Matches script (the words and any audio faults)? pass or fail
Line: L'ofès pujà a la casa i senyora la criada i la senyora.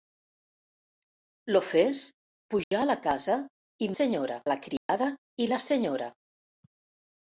fail